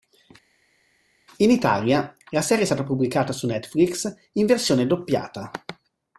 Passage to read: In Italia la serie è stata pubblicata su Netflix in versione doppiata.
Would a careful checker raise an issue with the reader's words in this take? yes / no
no